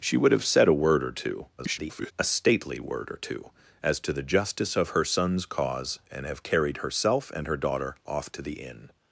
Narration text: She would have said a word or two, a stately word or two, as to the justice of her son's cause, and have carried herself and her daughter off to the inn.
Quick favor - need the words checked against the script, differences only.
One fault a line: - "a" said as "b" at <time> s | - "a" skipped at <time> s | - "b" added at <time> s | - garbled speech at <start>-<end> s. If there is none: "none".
- garbled speech at 1.6-2.1 s